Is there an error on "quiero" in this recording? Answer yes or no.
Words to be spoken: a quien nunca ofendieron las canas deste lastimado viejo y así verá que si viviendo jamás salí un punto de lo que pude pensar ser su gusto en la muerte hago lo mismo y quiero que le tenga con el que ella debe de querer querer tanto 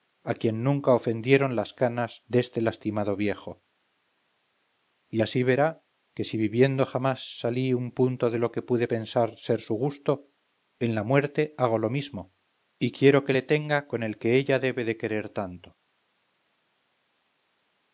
no